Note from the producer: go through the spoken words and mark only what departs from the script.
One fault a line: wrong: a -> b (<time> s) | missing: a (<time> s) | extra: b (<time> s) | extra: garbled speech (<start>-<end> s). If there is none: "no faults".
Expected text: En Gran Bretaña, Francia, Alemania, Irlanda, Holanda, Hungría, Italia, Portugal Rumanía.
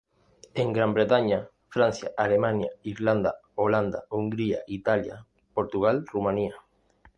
no faults